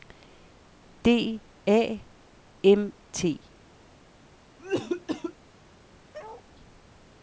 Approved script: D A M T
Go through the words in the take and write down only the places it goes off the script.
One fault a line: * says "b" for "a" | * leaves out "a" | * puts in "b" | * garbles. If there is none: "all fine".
all fine